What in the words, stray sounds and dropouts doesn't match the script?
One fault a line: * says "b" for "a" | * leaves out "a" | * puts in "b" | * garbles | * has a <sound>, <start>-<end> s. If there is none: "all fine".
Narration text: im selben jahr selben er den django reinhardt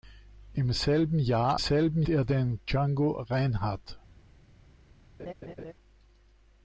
* has a laugh, 5.2-5.7 s